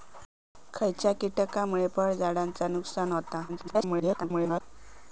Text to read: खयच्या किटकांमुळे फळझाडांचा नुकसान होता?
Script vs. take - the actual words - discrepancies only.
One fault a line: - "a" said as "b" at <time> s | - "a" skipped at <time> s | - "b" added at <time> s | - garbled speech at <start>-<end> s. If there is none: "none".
- garbled speech at 3.5-4.6 s